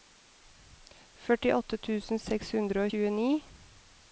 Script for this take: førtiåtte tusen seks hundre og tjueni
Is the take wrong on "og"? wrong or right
wrong